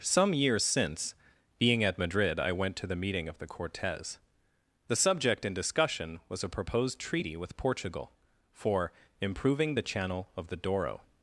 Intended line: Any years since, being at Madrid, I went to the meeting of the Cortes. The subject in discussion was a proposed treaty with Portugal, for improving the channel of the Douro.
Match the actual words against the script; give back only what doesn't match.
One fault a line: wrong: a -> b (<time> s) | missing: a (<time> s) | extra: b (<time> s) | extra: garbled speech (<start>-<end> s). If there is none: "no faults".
wrong: Any -> Some (0.0 s)